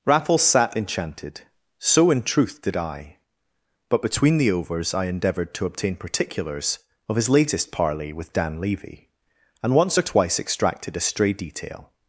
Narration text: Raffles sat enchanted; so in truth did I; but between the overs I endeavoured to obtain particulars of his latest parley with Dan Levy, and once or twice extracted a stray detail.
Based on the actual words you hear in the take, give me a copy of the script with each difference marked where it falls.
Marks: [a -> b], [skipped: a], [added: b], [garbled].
Raffles sat enchanted; so in truth did I; but between the overs I endeavoured to obtain particulars of his latest parley with Dan Levy, and once or twice extracted a stray detail.